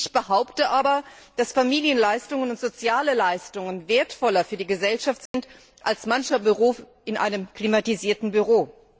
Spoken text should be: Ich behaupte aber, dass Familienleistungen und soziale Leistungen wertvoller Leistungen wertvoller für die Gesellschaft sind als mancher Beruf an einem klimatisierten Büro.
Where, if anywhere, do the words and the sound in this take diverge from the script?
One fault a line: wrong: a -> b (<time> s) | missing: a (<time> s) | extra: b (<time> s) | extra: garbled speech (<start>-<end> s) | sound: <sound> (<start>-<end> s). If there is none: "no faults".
missing: Leistungen wertvoller (4.4 s)
sound: dropout (5.3-5.3 s)
wrong: an -> in (7.0 s)